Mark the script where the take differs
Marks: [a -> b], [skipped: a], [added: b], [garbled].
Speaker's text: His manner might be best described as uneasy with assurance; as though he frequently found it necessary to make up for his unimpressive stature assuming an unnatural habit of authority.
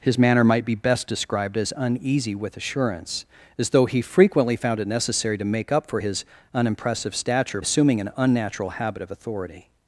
His manner might be best described as uneasy with assurance; as though he frequently found it necessary to make up for his unimpressive stature assuming an unnatural habit of authority.